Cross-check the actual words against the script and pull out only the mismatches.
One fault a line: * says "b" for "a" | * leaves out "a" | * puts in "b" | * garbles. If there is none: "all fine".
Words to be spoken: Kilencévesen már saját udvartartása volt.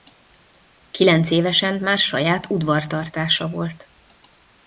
all fine